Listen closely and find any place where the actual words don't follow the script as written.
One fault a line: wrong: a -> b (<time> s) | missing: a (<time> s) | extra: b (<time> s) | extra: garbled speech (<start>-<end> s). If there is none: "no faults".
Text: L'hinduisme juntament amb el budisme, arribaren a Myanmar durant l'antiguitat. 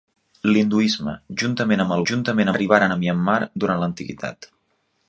wrong: budisme -> juntament (2.1 s)